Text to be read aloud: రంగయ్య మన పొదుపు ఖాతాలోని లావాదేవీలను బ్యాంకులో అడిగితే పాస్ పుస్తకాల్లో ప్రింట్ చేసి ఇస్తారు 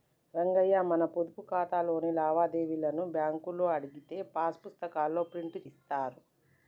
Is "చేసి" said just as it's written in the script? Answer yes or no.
no